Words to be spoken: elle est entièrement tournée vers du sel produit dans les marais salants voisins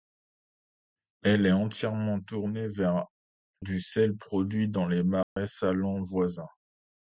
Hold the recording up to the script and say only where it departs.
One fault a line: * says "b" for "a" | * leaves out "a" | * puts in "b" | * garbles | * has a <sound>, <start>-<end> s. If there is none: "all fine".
* has a dropout, 5.2-5.4 s